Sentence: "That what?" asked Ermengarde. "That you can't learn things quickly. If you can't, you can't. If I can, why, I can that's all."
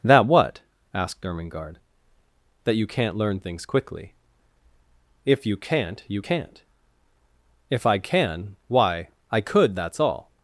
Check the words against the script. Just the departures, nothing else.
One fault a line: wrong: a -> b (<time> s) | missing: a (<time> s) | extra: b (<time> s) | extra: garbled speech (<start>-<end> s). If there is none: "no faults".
wrong: can -> could (9.4 s)